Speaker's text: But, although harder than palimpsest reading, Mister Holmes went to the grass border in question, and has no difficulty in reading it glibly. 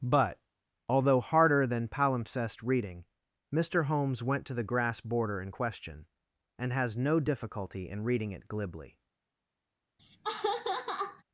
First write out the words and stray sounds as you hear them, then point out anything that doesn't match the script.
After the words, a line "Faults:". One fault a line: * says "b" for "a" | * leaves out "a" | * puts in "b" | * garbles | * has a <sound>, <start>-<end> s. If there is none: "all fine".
But, although harder than palimpsest reading, Mister Holmes went to the grass border in question, and has no difficulty in reading it glibly.
Faults:
* has a laugh, 10.0-11.2 s